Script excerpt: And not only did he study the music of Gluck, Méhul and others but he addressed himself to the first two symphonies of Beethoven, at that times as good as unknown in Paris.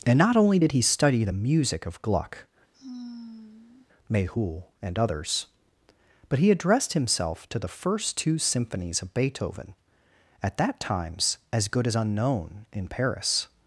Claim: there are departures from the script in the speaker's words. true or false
false